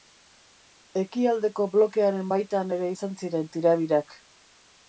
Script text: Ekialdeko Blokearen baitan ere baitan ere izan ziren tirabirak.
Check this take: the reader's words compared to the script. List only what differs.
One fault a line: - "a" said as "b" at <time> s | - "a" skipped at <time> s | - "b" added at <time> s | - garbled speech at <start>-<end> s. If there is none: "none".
- "baitan ere" skipped at 2.9 s